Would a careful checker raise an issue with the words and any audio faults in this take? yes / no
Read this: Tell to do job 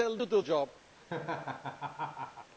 yes